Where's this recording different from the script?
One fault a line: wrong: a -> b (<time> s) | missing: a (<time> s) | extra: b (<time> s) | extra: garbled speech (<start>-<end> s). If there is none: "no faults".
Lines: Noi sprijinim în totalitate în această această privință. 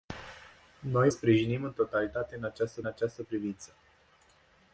no faults